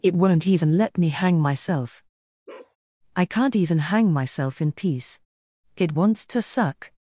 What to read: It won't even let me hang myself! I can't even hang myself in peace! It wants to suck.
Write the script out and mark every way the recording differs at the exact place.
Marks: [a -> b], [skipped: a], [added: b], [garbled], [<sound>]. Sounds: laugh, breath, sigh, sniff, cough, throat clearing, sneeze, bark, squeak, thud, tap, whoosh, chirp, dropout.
It won't even let me hang myself! [bark] I can't even hang myself in peace! It wants to suck.